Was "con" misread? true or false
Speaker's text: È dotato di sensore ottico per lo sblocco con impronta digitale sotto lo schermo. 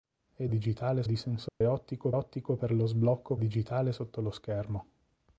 true